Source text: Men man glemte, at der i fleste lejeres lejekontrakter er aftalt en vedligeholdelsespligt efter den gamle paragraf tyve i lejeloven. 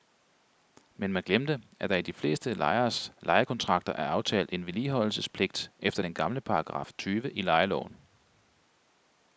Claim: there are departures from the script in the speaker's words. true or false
true